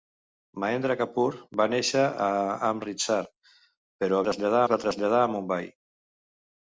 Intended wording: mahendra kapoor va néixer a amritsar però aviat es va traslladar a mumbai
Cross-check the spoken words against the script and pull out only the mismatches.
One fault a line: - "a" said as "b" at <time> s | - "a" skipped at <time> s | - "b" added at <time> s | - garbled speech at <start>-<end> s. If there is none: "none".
- "aviat" said as "traslladar" at 4.3 s